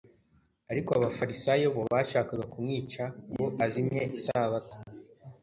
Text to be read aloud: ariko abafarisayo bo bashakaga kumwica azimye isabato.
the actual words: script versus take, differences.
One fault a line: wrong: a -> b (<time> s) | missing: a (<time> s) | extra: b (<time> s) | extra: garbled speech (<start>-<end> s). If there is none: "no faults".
extra: ngo (3.3 s)